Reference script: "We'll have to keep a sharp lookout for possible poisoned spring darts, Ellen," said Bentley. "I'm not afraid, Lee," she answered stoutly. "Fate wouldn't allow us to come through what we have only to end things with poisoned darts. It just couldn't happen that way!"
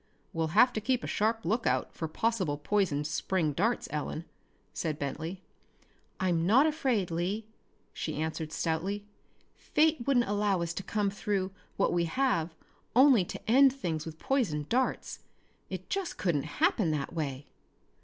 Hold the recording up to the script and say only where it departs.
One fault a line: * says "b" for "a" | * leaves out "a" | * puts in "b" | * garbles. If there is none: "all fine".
all fine